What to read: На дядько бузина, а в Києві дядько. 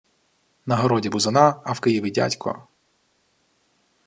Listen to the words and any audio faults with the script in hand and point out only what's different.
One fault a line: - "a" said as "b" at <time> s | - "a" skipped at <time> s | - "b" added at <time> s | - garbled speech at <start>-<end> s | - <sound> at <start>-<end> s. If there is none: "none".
- "дядько" said as "городі" at 0.8 s